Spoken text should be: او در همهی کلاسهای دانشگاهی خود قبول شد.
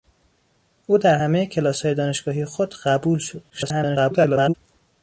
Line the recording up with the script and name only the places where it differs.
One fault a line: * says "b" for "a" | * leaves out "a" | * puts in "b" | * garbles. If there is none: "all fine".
* garbles